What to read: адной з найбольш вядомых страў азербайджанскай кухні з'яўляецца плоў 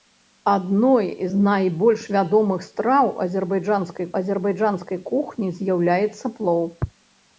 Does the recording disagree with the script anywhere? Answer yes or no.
yes